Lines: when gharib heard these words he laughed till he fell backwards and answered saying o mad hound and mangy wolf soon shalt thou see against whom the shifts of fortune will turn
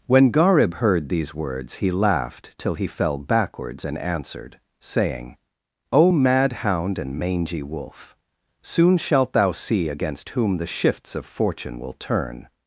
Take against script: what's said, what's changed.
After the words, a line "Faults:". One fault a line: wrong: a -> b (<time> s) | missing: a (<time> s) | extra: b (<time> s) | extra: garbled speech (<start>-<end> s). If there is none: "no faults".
when gharib heard these words he laughed till he fell backwards and answered saying o mad hound and mangy wolf soon shalt thou see against whom the shifts of fortune will turn
Faults:
no faults